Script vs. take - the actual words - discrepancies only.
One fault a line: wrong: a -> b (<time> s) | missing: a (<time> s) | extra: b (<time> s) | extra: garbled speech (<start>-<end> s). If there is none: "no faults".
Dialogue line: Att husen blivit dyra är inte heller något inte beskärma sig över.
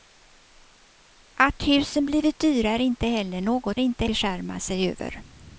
no faults